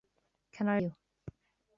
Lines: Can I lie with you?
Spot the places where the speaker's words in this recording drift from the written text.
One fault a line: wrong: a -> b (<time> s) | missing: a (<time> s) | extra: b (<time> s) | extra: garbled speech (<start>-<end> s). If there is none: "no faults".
missing: lie with (0.8 s)